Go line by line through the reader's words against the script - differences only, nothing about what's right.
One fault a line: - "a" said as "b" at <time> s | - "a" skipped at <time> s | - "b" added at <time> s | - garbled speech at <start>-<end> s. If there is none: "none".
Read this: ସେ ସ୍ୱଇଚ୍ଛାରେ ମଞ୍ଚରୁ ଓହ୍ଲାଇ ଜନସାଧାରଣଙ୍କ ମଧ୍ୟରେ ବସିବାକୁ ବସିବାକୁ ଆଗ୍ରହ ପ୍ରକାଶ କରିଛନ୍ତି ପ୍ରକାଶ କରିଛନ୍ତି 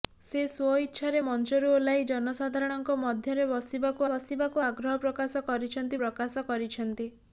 none